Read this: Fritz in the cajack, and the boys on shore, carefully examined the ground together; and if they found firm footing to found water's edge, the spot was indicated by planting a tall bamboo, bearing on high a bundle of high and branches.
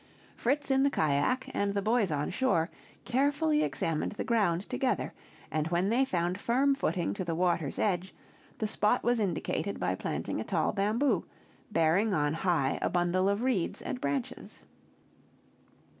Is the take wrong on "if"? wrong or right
wrong